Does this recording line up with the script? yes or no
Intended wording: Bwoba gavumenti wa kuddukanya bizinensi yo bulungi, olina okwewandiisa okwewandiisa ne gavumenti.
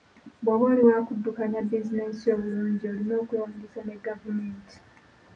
no